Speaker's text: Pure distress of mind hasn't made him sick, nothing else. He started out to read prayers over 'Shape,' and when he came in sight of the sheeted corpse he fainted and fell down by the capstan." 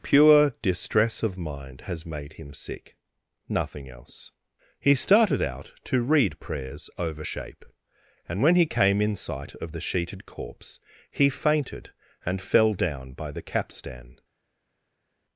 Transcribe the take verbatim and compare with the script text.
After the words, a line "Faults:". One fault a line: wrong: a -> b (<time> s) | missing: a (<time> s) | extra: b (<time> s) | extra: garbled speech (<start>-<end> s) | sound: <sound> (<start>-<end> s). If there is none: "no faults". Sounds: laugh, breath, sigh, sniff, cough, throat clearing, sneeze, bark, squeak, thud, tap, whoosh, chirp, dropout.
Pure distress of mind has made him sick, nothing else. He started out to read prayers over 'Shape,' and when he came in sight of the sheeted corpse he fainted and fell down by the capstan."
Faults:
wrong: hasn't -> has (1.8 s)